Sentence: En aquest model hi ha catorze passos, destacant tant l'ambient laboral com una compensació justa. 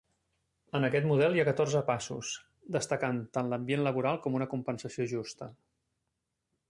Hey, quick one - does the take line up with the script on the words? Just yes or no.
yes